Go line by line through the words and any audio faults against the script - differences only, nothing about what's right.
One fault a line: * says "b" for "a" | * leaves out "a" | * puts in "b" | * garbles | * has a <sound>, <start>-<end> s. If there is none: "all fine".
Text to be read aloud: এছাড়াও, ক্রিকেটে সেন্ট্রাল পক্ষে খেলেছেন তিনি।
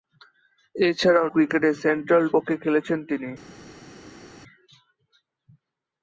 all fine